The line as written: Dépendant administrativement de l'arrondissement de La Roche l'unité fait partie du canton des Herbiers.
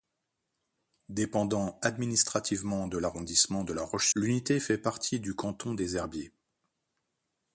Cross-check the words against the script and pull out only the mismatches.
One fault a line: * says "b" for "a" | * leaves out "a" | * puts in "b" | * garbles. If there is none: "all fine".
all fine